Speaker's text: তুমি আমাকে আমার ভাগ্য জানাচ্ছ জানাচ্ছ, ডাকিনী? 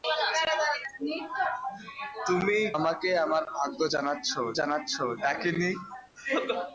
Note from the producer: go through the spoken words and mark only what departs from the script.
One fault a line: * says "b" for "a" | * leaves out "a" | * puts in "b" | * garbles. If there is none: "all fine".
all fine